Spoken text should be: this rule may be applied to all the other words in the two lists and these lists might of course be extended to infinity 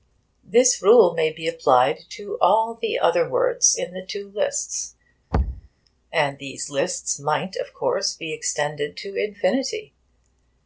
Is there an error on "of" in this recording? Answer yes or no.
no